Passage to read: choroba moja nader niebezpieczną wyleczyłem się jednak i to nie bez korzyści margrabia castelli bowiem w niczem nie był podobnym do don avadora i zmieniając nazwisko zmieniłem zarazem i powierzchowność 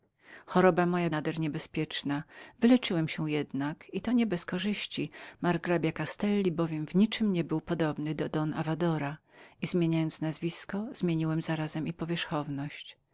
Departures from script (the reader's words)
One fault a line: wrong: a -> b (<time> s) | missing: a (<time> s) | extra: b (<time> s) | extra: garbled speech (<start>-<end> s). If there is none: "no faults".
no faults